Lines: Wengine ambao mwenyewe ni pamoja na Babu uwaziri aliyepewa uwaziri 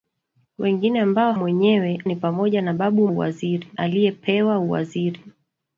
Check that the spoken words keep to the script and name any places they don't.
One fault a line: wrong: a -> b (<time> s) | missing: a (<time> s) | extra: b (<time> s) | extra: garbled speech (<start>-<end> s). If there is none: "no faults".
no faults